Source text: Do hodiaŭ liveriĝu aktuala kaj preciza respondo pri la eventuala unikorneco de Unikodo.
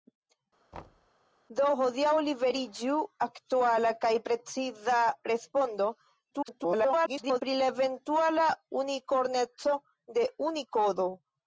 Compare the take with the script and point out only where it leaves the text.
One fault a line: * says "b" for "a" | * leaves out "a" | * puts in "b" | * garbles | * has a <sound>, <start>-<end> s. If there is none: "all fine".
* has a thud, 0.7-1.1 s
* garbles